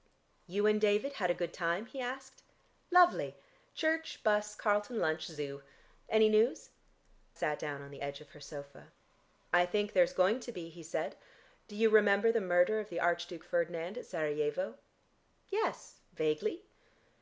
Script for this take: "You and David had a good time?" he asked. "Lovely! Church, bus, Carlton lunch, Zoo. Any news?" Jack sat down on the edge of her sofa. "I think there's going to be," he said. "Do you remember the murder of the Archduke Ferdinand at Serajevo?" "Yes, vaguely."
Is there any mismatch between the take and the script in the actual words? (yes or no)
yes